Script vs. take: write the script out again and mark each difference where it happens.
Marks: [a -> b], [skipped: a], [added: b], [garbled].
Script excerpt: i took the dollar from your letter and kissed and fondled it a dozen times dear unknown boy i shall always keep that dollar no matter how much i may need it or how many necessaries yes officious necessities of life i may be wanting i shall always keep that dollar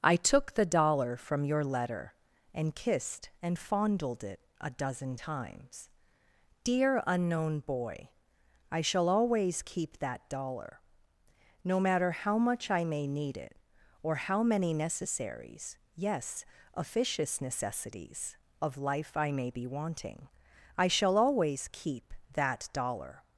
i took the dollar from your letter and kissed and fondled it a dozen times dear unknown boy i shall always keep that dollar no matter how much i may need it or how many necessaries yes officious necessities of life i may be wanting i shall always keep that dollar